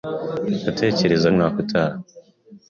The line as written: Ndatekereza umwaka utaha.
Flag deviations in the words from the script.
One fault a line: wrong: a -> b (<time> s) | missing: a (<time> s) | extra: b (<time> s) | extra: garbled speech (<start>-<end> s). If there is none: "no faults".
no faults